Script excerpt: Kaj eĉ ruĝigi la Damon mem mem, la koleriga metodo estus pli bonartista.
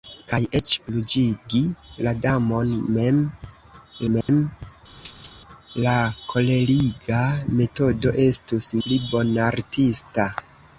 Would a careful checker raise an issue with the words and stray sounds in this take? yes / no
yes